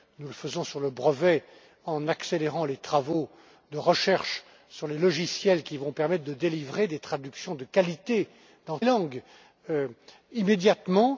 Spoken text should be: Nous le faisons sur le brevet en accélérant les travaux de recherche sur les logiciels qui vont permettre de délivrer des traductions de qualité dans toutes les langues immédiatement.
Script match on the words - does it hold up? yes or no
no